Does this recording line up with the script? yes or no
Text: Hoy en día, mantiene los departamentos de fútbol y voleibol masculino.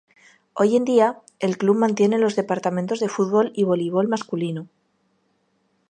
no